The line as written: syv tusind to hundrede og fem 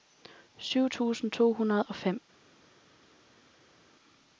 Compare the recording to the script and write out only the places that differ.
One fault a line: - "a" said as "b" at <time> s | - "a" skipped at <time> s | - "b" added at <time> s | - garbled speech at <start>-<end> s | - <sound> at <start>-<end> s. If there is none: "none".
none